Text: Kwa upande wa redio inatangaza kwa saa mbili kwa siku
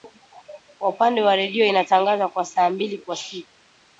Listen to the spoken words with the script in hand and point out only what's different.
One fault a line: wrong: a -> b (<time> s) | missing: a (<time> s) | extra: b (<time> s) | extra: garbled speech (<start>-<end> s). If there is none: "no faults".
no faults